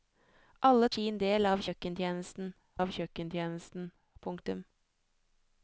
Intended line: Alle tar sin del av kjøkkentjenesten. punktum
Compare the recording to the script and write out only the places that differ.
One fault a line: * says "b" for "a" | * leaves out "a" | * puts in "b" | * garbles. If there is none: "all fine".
* leaves out "tar"
* puts in "av kjøkkentjenesten"